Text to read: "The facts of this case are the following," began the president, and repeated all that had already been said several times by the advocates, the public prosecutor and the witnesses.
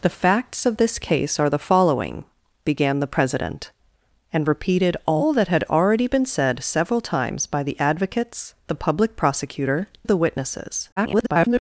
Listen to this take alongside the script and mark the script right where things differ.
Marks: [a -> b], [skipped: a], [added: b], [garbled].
"The facts of this case are the following," began the president, and repeated all that had already been said several times by the advocates, the public prosecutor [skipped: and] the witnesses. [garbled]